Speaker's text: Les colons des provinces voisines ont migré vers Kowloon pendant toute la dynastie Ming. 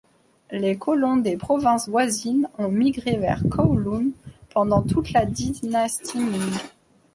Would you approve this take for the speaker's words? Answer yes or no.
yes